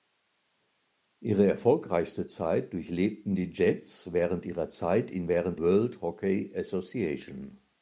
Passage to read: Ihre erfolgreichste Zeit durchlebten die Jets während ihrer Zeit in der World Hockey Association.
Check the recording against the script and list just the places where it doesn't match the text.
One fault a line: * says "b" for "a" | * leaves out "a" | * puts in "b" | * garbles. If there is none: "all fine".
* says "während" for "der"